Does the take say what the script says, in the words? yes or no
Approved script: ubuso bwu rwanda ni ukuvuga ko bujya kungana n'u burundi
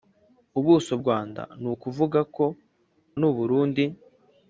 no